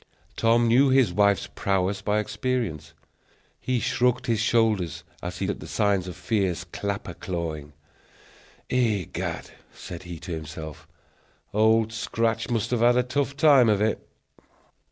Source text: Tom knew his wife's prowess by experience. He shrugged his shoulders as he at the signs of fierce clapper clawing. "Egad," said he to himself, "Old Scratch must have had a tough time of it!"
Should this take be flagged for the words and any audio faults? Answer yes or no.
no